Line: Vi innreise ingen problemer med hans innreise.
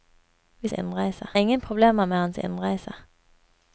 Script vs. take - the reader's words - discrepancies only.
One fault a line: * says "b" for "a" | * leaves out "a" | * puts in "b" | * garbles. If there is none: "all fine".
all fine